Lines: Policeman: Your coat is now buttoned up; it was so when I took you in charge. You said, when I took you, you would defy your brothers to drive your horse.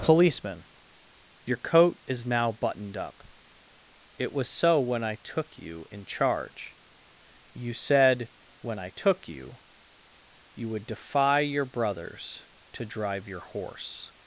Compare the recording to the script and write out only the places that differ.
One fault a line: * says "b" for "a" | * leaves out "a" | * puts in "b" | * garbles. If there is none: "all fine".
all fine